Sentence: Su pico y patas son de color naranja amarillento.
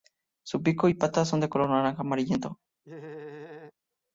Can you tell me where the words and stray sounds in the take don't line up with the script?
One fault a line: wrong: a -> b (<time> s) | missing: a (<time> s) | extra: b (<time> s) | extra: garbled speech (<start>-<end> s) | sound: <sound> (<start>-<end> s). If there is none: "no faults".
sound: laugh (2.8-3.7 s)